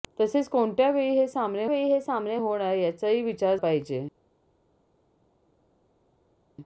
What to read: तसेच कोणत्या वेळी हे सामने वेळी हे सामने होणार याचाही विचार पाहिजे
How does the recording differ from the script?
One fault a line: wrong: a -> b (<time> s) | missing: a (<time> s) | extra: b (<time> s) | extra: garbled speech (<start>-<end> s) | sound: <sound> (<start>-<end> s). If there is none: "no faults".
no faults